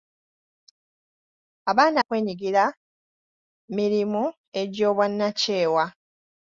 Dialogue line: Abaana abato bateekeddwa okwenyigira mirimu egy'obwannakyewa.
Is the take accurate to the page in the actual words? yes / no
no